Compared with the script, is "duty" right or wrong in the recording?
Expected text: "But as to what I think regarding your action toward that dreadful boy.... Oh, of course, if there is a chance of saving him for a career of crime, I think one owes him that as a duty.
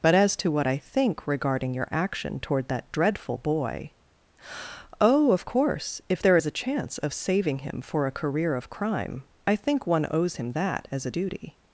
right